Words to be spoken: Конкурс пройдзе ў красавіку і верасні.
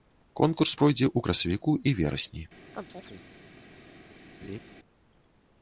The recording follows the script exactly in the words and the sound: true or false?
false